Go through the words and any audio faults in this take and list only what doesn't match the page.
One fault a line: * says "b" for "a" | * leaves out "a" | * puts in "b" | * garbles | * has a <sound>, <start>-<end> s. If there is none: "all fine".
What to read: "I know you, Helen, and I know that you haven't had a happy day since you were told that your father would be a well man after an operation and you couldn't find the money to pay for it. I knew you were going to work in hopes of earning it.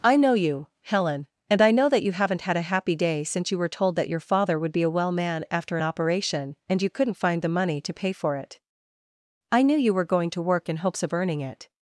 * leaves out "an"